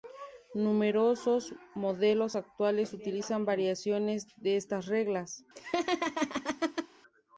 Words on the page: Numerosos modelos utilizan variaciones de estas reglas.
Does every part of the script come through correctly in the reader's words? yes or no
no